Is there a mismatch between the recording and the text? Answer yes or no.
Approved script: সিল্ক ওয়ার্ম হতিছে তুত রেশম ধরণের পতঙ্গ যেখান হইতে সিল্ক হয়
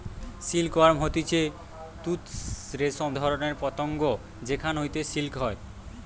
no